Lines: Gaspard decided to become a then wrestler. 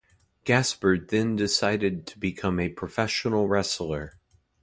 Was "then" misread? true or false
true